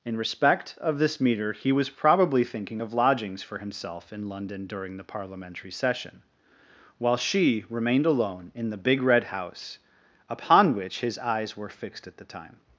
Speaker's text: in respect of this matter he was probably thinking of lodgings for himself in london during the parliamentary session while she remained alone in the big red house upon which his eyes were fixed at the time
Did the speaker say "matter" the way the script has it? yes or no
no